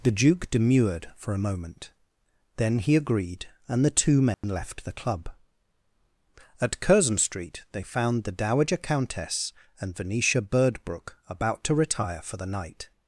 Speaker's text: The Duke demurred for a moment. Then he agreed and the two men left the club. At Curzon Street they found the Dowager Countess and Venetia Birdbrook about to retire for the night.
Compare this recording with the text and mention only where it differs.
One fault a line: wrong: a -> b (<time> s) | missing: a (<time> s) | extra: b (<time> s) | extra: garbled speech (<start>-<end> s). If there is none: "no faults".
no faults